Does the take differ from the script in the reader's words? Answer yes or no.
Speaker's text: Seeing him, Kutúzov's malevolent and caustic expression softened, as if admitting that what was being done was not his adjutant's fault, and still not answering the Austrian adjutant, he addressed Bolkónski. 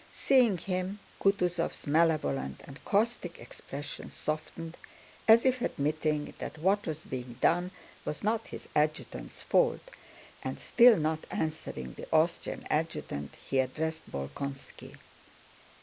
no